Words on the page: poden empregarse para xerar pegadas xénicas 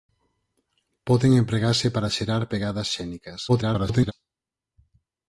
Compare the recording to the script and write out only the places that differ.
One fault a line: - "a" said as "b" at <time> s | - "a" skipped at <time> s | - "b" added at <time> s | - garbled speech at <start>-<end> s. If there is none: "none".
- garbled speech at 3.5-4.1 s